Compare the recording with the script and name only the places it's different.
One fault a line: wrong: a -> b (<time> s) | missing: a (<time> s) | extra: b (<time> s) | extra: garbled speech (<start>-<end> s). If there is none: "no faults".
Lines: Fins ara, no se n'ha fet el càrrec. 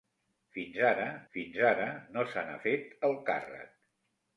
extra: fins ara (1.3 s)